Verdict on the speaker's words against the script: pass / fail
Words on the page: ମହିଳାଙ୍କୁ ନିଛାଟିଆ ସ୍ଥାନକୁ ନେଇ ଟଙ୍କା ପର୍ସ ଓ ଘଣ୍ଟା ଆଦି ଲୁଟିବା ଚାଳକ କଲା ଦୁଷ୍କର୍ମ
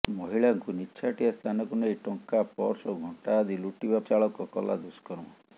pass